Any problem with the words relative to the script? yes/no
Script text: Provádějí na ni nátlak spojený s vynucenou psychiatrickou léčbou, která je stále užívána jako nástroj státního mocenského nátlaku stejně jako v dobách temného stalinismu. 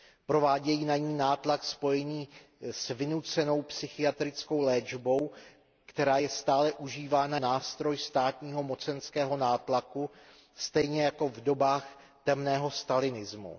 yes